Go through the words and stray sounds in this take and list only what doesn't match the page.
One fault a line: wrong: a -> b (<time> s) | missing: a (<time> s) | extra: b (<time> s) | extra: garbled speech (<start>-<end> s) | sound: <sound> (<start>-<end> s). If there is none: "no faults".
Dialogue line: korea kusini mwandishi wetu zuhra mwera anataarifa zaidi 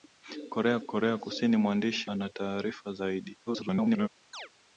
extra: korea (0.9 s)
missing: wetu zuhra mwera (2.1 s)
extra: garbled speech (3.5-4.1 s)
sound: chirp (4.3-4.5 s)